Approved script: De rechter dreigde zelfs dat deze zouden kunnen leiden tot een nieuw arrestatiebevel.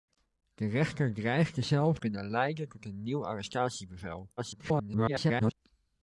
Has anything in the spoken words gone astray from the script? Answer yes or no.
yes